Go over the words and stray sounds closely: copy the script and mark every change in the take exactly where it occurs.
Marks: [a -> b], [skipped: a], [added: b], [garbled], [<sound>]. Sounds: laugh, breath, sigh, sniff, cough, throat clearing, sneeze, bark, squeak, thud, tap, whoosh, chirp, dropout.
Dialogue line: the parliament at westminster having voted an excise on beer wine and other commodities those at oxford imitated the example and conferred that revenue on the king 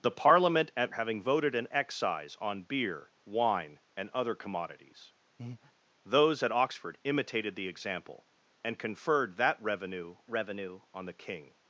the parliament at [skipped: westminster] having voted an excise on beer wine and other commodities [breath] those at oxford imitated the example and conferred that revenue [added: revenue] on the king